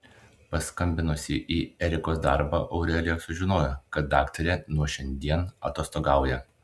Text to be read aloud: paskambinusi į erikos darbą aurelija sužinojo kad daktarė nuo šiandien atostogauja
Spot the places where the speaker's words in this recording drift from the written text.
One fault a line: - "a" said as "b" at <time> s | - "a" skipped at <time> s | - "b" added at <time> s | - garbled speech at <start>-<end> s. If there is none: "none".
none